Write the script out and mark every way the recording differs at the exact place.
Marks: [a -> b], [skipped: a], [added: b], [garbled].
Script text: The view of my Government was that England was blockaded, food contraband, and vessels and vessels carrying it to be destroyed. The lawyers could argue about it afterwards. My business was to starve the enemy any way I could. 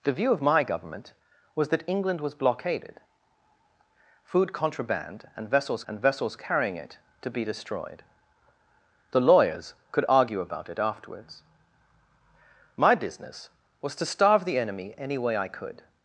The view of my Government was that England was blockaded, food contraband, and vessels and vessels carrying it to be destroyed. The lawyers could argue about it afterwards. My business was to starve the enemy any way I could.